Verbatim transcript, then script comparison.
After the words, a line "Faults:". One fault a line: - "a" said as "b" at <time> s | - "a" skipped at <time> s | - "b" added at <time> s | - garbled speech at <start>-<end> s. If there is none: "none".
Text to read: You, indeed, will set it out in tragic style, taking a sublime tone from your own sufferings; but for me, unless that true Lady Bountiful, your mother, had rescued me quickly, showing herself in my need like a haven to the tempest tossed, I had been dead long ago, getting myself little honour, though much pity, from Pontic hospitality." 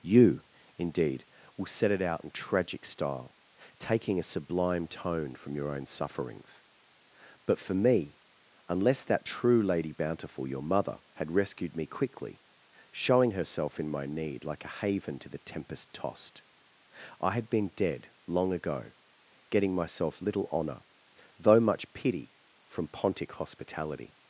You, indeed, will set it out in tragic style, taking a sublime tone from your own sufferings; but for me, unless that true Lady Bountiful, your mother, had rescued me quickly, showing herself in my need like a haven to the tempest tossed, I had been dead long ago, getting myself little honour, though much pity, from Pontic hospitality."
Faults:
none